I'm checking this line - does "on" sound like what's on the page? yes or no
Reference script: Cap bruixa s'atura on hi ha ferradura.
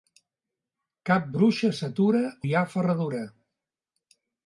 no